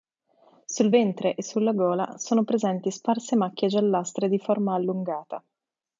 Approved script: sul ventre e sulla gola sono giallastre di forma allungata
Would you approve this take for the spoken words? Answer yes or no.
no